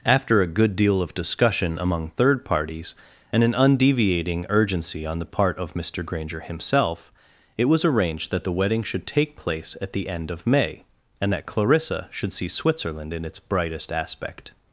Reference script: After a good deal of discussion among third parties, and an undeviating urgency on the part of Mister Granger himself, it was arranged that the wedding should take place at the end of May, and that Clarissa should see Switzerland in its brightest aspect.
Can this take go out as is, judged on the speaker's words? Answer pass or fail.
pass